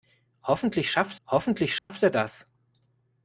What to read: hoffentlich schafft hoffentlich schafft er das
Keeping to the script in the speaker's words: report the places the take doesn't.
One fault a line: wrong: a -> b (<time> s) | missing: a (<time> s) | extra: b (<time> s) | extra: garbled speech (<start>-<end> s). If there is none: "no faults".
no faults